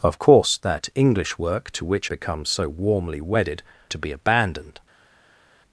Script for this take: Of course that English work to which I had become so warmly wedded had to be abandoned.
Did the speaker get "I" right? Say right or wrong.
wrong